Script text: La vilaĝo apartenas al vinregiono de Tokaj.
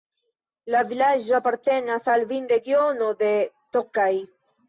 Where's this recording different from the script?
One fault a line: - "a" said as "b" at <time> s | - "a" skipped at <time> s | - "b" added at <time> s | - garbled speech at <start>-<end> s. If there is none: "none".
none